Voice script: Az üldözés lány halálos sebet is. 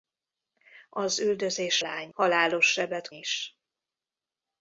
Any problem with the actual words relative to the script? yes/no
no